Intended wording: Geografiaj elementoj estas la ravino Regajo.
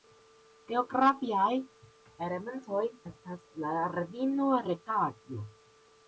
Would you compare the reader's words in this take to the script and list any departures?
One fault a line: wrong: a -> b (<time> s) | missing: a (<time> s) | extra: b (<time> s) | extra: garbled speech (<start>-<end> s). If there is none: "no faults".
no faults